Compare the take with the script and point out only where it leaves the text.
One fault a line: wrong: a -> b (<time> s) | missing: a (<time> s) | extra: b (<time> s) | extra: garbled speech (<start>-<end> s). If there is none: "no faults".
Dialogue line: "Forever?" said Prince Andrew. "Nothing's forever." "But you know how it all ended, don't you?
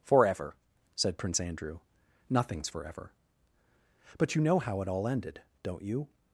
no faults